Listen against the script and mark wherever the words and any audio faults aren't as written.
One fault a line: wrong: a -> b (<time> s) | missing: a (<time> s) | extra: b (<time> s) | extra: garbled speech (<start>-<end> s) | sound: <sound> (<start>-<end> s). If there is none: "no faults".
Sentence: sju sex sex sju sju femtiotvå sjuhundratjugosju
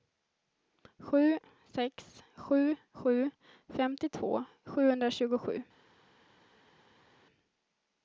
missing: sex (2.2 s)